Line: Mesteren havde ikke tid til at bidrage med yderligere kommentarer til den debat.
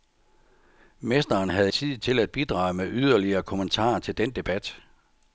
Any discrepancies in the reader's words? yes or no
yes